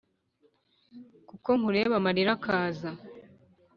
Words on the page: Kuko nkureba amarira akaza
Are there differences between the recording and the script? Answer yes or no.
no